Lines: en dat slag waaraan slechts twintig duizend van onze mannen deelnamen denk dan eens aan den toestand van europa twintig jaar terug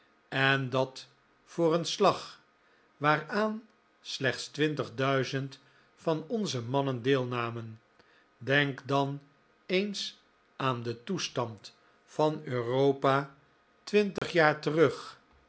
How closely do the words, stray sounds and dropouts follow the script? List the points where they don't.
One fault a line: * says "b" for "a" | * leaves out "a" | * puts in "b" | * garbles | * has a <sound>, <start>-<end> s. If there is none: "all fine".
* puts in "voor een"
* has a dropout, 14.2-14.2 s